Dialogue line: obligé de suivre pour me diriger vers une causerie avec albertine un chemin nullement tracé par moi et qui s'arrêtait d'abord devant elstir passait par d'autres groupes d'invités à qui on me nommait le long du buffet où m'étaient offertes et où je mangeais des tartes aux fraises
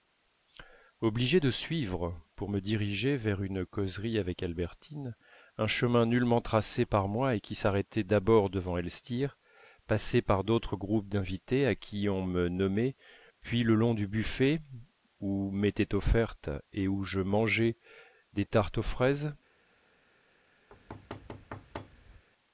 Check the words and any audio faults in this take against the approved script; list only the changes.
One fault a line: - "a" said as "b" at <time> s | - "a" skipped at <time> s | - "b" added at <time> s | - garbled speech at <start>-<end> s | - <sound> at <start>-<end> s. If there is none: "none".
- "puis" added at 13.4 s
- thud at 20.7-22.2 s